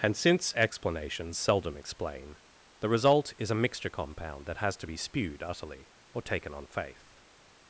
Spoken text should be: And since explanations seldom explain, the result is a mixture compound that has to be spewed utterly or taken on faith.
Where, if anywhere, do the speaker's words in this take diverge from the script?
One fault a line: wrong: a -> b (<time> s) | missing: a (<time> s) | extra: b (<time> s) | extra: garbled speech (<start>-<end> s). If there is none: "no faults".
no faults